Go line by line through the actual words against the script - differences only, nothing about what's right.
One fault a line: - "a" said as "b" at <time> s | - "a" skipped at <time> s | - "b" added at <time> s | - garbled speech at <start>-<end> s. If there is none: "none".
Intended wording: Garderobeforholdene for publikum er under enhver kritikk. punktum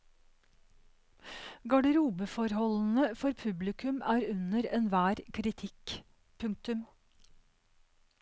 none